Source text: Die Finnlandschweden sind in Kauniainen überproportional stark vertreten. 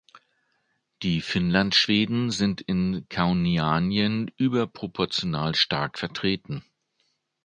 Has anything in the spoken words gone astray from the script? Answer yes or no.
no